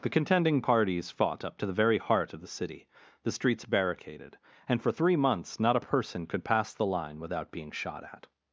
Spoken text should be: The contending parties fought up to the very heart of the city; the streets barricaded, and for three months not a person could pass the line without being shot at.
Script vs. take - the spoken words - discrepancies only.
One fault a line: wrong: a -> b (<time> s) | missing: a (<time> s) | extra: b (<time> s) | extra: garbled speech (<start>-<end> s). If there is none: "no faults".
no faults